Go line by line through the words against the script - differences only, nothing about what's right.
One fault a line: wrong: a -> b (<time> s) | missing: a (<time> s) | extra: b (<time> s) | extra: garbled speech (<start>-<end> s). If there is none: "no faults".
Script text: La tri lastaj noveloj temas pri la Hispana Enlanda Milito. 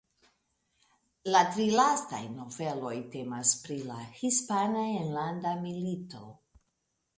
no faults